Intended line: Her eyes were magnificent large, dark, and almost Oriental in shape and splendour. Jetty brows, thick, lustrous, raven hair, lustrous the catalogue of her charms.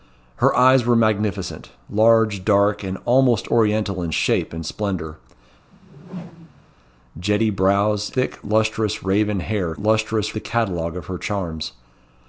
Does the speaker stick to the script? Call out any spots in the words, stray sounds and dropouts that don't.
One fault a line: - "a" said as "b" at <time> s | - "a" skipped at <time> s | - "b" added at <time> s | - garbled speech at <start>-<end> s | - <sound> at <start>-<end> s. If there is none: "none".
- whoosh at 5.7-6.8 s